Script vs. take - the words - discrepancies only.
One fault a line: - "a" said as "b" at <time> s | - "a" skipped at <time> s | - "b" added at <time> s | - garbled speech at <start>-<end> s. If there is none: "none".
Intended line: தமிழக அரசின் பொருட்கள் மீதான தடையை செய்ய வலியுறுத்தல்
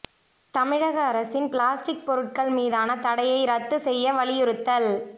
- "பிளாஸ்டிக்" added at 1.5 s
- "ரத்து" added at 3.5 s